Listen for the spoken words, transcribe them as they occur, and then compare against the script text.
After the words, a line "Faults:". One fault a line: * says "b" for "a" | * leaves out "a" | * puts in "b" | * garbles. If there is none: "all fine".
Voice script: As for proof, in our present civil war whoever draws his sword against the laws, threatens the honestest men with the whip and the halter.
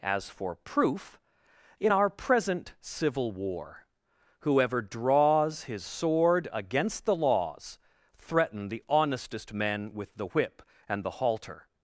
As for proof, in our present civil war whoever draws his sword against the laws, threaten the honestest men with the whip and the halter.
Faults:
* says "threaten" for "threatens"